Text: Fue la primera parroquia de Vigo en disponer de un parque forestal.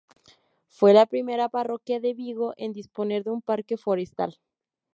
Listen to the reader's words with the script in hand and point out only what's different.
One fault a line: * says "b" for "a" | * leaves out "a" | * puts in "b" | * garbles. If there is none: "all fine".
all fine